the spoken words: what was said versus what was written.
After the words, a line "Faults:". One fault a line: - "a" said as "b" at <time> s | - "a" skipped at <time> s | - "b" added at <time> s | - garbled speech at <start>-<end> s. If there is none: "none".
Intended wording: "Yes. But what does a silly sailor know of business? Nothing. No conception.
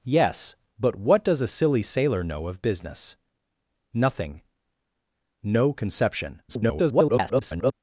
"Yes. But what does a silly sailor know of business? Nothing. No conception. [garbled]
Faults:
- garbled speech at 6.5-7.7 s